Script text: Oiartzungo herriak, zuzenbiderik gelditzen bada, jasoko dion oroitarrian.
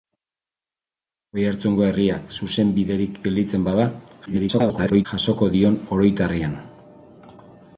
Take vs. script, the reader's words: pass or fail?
fail